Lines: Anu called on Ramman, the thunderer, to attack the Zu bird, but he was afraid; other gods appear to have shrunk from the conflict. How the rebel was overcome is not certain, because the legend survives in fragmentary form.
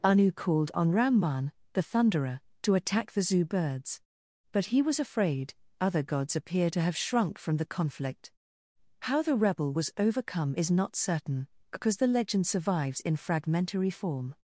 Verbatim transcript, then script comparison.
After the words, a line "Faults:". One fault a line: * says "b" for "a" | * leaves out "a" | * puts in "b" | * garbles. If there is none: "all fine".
Anu called on Ramman, the thunderer, to attack the Zu birds, but he was afraid; other gods appear to have shrunk from the conflict. How the rebel was overcome is not certain, because the legend survives in fragmentary form.
Faults:
* says "birds" for "bird"